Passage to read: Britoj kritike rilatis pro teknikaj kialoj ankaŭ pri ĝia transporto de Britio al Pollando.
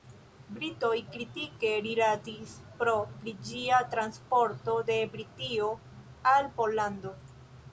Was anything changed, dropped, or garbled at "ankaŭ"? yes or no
yes